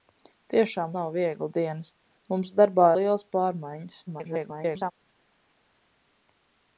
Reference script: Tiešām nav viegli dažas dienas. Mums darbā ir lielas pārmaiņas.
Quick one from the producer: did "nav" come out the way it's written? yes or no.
yes